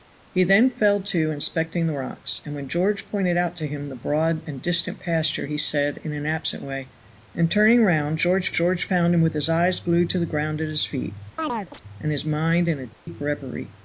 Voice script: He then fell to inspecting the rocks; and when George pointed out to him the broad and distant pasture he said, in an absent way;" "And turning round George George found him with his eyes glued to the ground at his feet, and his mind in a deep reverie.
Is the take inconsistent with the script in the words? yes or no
no